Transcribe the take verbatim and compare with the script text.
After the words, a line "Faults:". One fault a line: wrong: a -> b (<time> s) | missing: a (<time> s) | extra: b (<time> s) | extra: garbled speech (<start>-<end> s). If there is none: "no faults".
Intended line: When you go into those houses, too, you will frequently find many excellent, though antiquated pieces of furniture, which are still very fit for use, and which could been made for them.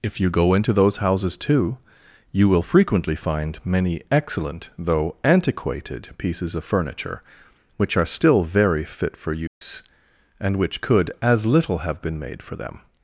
If you go into those houses, too, you will frequently find many excellent, though antiquated pieces of furniture, which are still very fit for use, and which could as little have been made for them.
Faults:
wrong: When -> If (0.0 s)
extra: as little have (11.2 s)